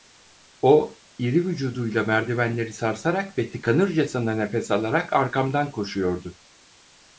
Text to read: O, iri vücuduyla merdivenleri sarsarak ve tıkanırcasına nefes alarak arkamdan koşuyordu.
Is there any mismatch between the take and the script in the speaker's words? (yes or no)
no